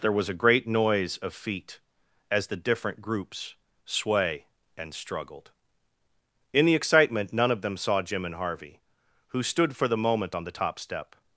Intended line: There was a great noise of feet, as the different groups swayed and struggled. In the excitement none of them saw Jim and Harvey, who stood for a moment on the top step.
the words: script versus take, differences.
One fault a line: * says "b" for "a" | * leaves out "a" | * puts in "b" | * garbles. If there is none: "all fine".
* says "sway" for "swayed"
* says "the" for "a"